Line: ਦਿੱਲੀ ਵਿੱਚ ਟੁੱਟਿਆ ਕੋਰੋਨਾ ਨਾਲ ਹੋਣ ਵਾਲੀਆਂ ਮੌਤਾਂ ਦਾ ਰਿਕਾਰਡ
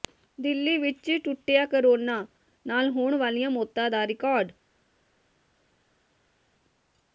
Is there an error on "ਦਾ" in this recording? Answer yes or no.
no